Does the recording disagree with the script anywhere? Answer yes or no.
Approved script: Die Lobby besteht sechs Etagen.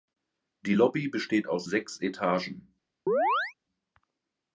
yes